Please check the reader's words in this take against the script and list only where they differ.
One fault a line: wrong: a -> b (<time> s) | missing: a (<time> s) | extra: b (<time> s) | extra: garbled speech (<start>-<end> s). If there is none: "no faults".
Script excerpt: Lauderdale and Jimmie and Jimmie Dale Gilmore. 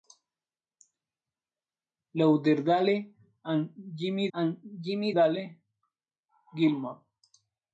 no faults